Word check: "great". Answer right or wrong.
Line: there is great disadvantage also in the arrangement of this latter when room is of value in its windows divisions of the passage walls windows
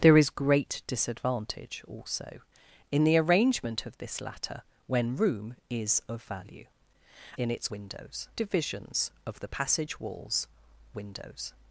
right